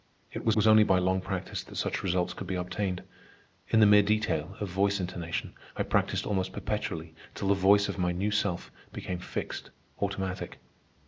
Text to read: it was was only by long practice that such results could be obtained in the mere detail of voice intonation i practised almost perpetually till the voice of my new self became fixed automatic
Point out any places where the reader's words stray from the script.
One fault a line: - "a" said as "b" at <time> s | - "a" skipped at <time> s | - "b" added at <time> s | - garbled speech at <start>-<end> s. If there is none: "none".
none